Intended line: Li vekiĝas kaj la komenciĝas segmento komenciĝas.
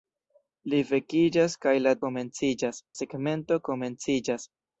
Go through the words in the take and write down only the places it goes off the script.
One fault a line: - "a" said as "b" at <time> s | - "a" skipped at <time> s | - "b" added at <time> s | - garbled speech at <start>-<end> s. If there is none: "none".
none